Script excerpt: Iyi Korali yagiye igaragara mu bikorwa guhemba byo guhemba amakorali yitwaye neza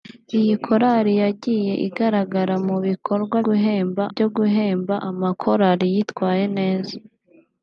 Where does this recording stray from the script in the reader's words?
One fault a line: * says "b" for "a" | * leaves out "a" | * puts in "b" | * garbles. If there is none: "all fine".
all fine